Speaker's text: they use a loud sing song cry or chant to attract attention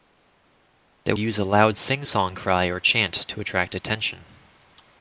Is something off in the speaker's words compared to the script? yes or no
no